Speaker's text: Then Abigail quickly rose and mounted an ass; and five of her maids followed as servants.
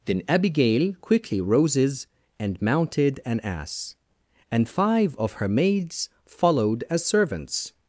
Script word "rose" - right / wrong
wrong